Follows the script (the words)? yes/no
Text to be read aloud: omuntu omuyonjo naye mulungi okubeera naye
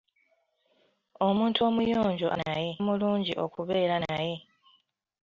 yes